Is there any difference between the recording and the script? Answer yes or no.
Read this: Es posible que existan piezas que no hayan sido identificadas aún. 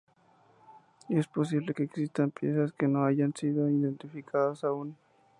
no